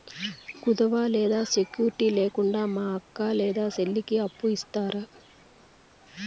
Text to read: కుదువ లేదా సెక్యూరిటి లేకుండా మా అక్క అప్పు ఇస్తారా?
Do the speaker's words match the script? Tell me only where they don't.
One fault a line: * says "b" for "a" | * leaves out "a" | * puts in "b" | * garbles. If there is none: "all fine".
* puts in "లేదా చెల్లికి"